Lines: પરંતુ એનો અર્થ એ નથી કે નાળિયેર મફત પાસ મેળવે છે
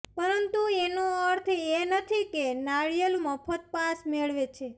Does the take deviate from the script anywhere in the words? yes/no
no